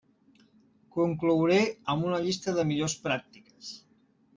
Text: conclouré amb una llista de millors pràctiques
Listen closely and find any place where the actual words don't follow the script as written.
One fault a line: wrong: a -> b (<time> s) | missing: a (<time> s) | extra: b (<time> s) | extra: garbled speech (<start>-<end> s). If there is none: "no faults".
no faults